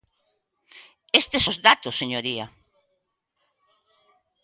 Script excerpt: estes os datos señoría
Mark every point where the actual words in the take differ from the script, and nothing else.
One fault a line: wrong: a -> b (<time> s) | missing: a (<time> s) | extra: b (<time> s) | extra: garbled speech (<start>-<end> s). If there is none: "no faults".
no faults